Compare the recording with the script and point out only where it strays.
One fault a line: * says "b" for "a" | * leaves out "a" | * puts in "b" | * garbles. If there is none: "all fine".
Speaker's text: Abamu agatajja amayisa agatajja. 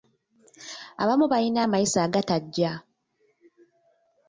* says "balina" for "agatajja"